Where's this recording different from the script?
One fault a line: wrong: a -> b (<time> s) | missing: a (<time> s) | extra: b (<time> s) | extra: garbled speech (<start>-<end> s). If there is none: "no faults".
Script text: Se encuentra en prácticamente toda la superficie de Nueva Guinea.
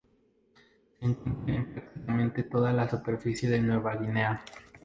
no faults